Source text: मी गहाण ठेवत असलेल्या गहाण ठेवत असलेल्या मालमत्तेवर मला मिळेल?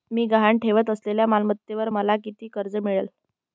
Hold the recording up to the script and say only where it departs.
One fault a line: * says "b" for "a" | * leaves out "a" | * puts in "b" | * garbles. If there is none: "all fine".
* says "मालमत्तेवर मला किती कर्ज" for "गहाण ठेवत असलेल्या मालमत्तेवर मला"